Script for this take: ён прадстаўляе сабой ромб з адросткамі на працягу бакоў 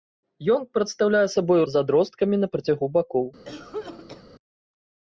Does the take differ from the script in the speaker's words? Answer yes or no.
yes